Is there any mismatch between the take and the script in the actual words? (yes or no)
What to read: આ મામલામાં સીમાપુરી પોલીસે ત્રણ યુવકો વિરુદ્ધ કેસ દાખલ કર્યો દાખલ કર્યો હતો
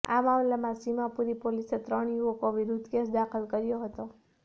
yes